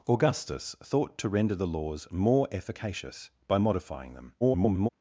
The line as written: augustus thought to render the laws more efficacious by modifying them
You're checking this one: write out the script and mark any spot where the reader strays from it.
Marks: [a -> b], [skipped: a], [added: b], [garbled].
augustus thought to render the laws more efficacious by modifying them [garbled]